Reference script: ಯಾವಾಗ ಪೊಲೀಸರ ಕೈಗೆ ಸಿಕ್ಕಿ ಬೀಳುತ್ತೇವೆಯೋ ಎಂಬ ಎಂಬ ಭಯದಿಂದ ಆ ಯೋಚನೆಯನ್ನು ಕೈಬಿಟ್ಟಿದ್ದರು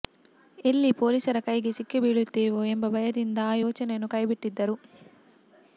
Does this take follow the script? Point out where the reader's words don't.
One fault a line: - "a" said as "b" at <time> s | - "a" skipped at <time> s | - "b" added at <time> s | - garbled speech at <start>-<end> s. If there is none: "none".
- "ಯಾವಾಗ" said as "ಎಲ್ಲಿ" at 0.7 s
- "ಎಂಬ" skipped at 2.9 s